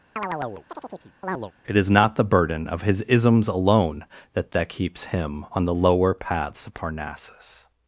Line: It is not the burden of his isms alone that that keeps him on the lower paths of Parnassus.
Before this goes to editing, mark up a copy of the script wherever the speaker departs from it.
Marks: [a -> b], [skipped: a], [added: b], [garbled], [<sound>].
[chirp] It is not the burden of his isms alone that that keeps him on the lower paths of Parnassus.